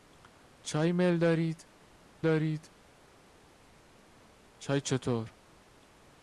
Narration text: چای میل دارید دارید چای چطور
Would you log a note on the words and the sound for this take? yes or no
no